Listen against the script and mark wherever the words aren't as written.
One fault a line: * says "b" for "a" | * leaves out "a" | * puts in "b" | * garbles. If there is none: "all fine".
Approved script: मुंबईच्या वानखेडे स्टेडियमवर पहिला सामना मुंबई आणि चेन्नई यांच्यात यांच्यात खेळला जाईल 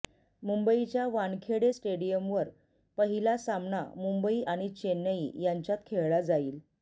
* leaves out "यांच्यात"